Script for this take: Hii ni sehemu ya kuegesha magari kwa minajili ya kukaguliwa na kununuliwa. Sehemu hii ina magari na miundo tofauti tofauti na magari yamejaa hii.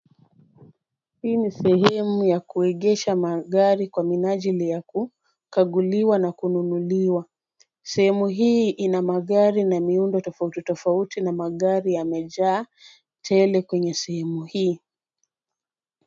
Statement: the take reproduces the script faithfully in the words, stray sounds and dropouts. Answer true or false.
false